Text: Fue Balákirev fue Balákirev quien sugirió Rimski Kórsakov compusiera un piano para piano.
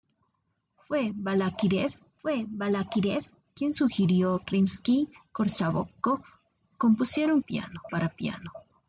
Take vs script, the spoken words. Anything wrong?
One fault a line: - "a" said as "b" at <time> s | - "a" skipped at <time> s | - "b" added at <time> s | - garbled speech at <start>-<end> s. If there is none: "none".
none